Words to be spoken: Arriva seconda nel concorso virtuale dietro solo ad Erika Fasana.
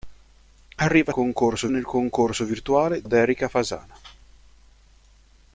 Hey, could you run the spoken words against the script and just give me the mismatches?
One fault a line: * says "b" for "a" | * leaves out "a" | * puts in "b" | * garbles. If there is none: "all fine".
* says "concorso" for "seconda"
* leaves out "dietro solo"